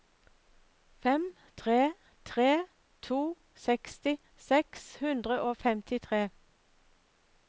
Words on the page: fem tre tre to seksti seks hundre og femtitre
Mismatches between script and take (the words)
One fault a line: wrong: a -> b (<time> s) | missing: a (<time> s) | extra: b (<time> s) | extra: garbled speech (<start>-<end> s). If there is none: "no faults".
no faults